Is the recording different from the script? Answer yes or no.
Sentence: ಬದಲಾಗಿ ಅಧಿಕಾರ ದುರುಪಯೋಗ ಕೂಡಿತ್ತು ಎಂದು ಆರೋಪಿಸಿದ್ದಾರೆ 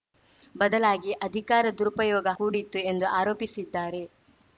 no